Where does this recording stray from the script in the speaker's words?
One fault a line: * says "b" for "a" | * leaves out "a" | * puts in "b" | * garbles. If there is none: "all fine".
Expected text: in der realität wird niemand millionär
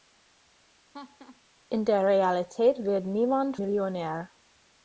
all fine